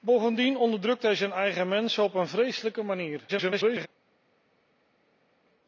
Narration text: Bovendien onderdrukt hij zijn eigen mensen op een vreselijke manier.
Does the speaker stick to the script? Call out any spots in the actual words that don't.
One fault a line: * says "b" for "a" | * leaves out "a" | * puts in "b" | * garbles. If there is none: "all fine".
* garbles